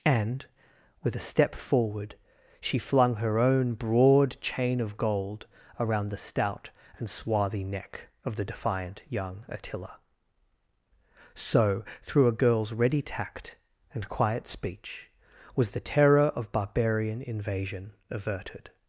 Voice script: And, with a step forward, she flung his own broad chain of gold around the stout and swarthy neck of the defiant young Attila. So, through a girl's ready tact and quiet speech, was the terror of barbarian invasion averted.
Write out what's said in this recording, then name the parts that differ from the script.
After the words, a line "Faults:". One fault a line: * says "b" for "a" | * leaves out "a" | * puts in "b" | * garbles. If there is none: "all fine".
And, with a step forward, she flung her own broad chain of gold around the stout and swarthy neck of the defiant young Attila. So, through a girl's ready tact and quiet speech, was the terror of barbarian invasion averted.
Faults:
* says "her" for "his"